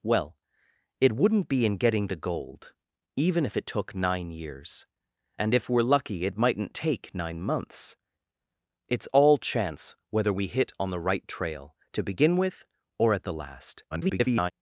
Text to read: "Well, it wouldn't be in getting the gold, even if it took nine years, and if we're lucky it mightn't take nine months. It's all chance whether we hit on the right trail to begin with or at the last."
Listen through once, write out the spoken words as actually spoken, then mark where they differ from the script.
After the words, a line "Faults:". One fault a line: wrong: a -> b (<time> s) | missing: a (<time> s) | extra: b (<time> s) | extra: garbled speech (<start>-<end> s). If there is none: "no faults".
"Well, it wouldn't be in getting the gold, even if it took nine years, and if we're lucky it mightn't take nine months. It's all chance whether we hit on the right trail to begin with or at the last." [garbled]
Faults:
extra: garbled speech (13.9-14.5 s)